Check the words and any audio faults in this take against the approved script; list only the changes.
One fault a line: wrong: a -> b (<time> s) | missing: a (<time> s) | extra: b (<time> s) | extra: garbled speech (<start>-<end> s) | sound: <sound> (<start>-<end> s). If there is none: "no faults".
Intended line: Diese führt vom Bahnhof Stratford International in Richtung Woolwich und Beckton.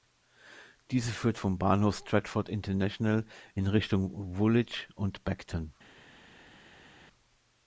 no faults